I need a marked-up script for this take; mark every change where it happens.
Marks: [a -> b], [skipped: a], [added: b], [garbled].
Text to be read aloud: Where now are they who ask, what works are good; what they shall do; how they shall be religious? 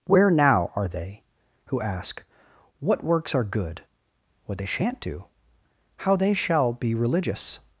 Where now are they who ask, what works are good; what they [shall -> shan't] do; how they shall be religious?